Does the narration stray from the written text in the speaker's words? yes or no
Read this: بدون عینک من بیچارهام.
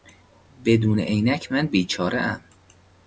no